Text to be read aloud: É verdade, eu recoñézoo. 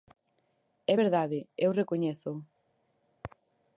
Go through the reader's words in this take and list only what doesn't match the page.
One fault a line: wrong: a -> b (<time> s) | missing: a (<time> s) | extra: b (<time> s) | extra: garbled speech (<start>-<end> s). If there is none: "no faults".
no faults